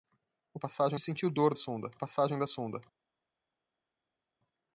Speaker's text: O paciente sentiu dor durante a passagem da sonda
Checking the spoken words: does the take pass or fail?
fail